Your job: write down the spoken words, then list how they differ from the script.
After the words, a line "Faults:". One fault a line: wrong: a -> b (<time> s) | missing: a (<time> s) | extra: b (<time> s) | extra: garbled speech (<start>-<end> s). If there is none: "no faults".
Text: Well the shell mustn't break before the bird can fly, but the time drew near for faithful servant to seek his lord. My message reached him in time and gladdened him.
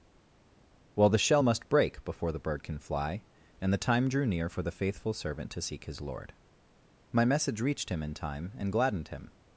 Well the shell must break before the bird can fly, and the time drew near for the faithful servant to seek his lord. My message reached him in time and gladdened him.
Faults:
wrong: mustn't -> must (1.4 s)
wrong: but -> and (3.6 s)
extra: the (4.6 s)